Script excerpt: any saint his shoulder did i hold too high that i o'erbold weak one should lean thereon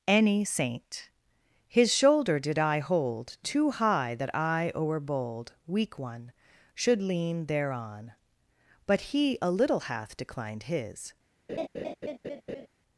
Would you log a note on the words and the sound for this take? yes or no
yes